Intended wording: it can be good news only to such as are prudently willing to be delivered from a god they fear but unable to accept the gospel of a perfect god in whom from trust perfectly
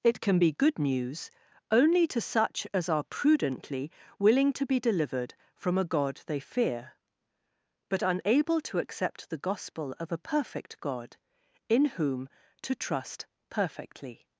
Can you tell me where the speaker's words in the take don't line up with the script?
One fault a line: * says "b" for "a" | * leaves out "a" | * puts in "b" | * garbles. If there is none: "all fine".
* says "to" for "from"